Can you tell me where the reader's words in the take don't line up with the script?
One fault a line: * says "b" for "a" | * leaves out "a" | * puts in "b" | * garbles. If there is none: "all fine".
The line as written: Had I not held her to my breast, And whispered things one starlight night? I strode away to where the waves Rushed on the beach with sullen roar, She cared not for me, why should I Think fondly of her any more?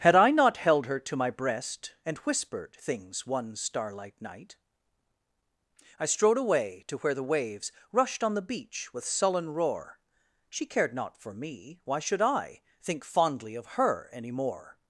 all fine